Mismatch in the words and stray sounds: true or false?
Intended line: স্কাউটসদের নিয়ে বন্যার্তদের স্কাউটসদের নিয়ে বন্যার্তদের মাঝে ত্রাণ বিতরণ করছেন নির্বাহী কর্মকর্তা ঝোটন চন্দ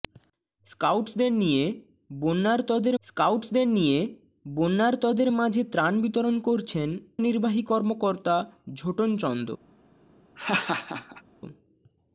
true